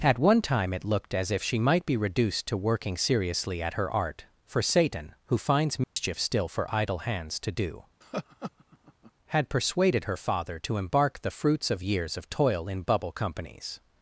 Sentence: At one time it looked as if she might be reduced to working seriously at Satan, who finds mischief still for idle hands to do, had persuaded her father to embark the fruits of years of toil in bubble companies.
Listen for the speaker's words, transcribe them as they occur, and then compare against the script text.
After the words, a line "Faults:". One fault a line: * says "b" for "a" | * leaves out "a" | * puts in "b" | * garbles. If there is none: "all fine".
At one time it looked as if she might be reduced to working seriously at her art, for Satan, who finds mischief still for idle hands to do, had persuaded her father to embark the fruits of years of toil in bubble companies.
Faults:
* puts in "her art for"